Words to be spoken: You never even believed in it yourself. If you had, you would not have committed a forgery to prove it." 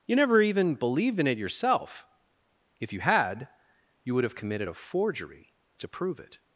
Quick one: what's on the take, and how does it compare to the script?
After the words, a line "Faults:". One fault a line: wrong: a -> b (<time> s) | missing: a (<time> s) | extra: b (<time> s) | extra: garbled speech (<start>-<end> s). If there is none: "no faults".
You never even believed in it yourself. If you had, you would have committed a forgery to prove it."
Faults:
missing: not (4.2 s)